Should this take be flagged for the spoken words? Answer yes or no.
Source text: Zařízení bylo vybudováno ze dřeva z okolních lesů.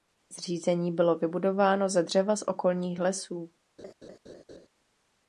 no